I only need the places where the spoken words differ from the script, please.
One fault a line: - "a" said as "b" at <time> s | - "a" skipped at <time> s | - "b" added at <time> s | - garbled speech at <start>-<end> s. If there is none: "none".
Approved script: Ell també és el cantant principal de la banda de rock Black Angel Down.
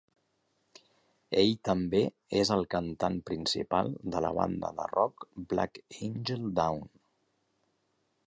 none